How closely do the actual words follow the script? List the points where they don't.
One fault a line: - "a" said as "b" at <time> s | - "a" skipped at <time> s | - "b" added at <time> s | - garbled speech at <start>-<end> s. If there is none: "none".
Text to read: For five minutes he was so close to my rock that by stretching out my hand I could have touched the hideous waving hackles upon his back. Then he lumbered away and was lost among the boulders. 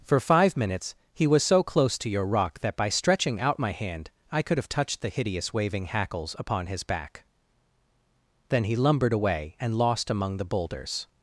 - "my" said as "your" at 2.1 s
- "was" skipped at 9.7 s